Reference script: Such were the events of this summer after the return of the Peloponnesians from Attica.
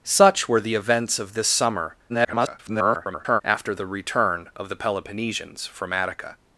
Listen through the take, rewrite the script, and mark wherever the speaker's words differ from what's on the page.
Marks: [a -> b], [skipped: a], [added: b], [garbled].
Such were the events of this summer [garbled] after the return of the Peloponnesians from Attica.